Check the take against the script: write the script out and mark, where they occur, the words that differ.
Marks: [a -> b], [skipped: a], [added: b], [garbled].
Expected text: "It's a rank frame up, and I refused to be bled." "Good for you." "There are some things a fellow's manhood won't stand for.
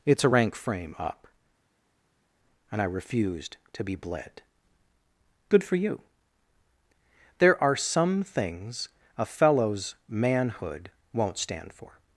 "It's a rank frame up, and I refused to be bled." "Good for you." "There are some things a fellow's manhood won't stand for.